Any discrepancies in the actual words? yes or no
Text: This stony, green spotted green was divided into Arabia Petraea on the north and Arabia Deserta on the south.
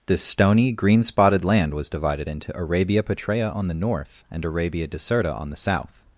yes